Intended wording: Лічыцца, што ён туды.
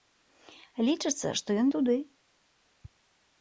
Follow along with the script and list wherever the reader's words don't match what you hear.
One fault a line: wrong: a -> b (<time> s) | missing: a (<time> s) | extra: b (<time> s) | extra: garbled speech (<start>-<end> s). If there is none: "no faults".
no faults